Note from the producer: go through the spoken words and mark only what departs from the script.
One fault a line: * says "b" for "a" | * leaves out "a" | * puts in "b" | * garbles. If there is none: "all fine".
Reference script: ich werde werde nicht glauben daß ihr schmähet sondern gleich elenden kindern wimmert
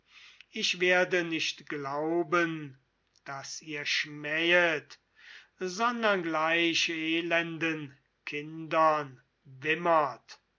* leaves out "werde"